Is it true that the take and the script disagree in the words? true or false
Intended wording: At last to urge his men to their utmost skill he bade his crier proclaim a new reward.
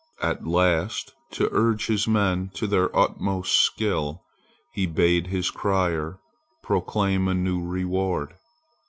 false